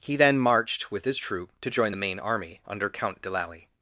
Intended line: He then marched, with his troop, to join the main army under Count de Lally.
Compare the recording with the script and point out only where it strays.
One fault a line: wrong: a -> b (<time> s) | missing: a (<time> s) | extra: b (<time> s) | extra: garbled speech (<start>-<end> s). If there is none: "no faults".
no faults